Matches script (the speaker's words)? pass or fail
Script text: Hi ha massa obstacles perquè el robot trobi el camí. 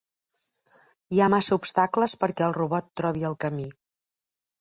pass